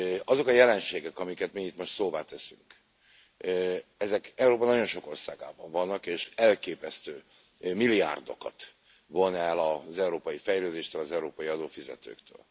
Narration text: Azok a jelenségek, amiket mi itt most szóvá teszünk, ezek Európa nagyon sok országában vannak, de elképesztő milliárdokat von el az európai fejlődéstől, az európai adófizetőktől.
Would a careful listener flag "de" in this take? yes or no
yes